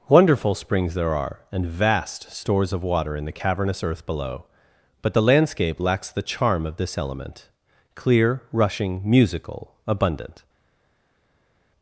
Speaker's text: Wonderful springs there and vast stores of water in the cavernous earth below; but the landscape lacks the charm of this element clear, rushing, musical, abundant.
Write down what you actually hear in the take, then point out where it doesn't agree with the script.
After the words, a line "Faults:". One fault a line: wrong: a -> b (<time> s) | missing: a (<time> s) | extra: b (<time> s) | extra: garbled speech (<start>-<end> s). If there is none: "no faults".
Wonderful springs there are, and vast stores of water in the cavernous earth below; but the landscape lacks the charm of this element clear, rushing, musical, abundant.
Faults:
extra: are (1.1 s)